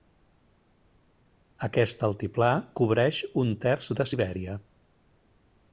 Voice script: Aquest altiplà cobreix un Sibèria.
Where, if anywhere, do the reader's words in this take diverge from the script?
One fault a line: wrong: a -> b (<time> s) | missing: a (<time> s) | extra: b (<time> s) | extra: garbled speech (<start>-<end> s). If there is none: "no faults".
extra: terç de (3.7 s)